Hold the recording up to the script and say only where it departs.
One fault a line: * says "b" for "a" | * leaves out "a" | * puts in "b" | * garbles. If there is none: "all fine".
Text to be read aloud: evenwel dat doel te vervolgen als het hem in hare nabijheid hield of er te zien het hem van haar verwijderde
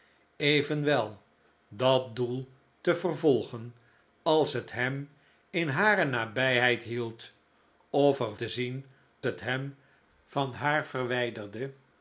all fine